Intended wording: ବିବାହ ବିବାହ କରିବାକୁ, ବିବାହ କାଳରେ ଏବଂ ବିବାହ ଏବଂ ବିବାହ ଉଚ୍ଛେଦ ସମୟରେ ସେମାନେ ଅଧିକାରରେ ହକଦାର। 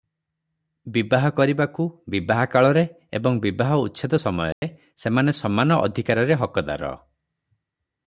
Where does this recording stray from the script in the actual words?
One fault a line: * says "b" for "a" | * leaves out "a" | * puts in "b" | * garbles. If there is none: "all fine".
* leaves out "ବିବାହ"
* leaves out "ଏବଂ ବିବାହ"
* puts in "ସମାନ"